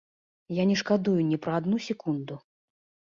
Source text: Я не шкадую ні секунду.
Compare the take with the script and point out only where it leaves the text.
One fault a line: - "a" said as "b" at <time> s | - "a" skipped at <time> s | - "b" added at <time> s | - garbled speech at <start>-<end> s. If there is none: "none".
- "пра адну" added at 1.5 s